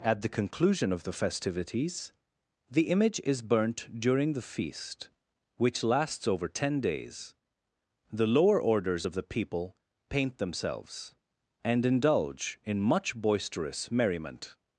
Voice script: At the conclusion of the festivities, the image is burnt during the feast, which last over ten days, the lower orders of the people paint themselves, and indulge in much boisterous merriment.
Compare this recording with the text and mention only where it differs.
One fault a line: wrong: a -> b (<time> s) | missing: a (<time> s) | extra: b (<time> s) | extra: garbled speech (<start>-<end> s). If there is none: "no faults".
wrong: last -> lasts (5.8 s)